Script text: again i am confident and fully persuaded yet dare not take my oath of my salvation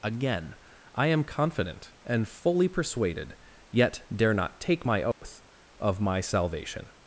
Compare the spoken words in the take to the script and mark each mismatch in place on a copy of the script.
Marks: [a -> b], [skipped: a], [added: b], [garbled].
again i am confident and fully persuaded yet dare not take my oath of my salvation